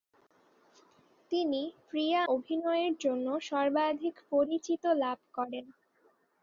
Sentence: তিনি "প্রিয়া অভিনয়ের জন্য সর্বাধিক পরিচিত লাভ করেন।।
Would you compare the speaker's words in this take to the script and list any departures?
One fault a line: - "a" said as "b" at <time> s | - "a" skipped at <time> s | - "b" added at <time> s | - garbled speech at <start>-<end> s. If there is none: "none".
none